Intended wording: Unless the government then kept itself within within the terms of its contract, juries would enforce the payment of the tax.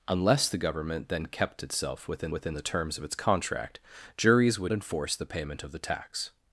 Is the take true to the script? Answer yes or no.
yes